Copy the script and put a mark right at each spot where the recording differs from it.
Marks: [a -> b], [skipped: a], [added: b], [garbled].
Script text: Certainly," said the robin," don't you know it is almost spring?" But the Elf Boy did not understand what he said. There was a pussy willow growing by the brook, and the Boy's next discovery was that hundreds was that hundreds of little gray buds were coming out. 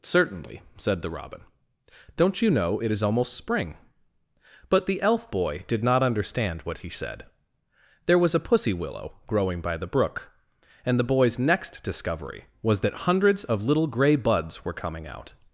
Certainly," said the robin," don't you know it is almost spring?" But the Elf Boy did not understand what he said. There was a pussy willow growing by the brook, and the Boy's next discovery was that hundreds [skipped: was that hundreds] of little gray buds were coming out.